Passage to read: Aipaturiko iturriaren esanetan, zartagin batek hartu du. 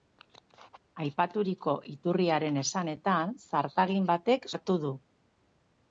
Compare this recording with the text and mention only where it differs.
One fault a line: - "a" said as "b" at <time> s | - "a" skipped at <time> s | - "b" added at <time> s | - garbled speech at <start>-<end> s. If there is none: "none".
none